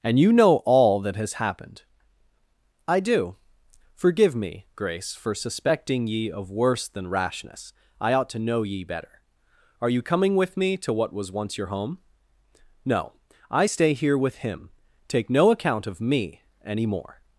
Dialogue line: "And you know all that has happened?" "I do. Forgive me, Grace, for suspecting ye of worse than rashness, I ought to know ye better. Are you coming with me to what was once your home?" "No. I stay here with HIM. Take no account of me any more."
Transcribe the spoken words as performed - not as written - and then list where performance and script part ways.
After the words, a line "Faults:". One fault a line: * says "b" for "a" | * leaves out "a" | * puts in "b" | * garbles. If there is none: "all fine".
"And you know all that has happened?" "I do. Forgive me, Grace, for suspecting ye of worse than rashness, I ought to know ye better. Are you coming with me to what was once your home?" "No. I stay here with HIM. Take no account of me any more."
Faults:
all fine